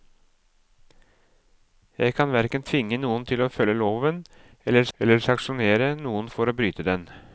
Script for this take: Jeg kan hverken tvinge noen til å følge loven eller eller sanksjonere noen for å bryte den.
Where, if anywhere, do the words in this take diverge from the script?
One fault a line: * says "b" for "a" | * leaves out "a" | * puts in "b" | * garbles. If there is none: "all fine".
all fine